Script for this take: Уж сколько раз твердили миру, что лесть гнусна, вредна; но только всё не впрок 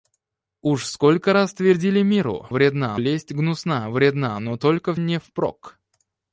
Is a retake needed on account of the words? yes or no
yes